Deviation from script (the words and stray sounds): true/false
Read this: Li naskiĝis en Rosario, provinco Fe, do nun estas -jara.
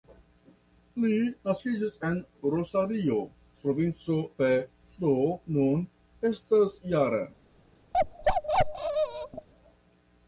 true